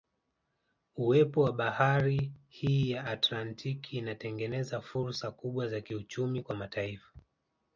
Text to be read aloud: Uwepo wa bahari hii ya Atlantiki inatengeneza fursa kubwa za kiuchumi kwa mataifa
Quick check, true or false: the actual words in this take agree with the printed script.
true